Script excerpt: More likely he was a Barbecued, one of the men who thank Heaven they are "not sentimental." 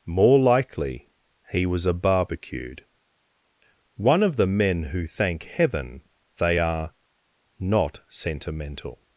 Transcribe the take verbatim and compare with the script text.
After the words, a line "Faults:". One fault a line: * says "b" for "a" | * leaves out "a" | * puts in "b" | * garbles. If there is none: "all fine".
More likely he was a Barbecued, one of the men who thank Heaven they are "not sentimental."
Faults:
all fine